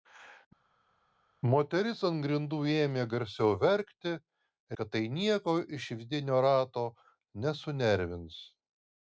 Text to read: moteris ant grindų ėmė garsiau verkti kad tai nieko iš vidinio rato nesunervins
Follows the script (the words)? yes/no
yes